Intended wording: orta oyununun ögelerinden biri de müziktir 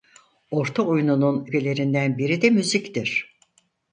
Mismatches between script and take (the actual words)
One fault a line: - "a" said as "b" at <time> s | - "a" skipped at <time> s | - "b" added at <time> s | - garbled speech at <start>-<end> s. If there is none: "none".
none